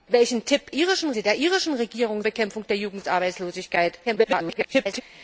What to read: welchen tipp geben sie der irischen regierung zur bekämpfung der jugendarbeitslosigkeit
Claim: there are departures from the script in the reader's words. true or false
true